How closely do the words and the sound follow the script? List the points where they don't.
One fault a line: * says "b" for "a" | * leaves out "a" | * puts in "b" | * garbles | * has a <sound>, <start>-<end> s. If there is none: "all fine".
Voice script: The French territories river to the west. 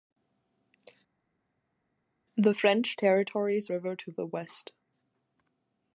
all fine